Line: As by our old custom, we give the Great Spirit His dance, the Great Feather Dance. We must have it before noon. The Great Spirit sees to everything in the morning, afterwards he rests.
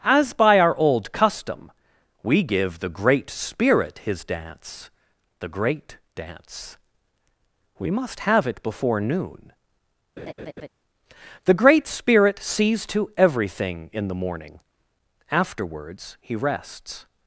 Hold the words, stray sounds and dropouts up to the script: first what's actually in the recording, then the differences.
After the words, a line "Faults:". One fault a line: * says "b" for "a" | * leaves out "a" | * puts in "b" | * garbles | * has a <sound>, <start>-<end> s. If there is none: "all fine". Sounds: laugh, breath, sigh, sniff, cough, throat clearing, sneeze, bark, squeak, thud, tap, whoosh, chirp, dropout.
As by our old custom, we give the Great Spirit His dance, the Great Dance. We must have it before noon. The Great Spirit sees to everything in the morning, afterwards he rests.
Faults:
* leaves out "Feather"
* has a laugh, 10.2-10.7 s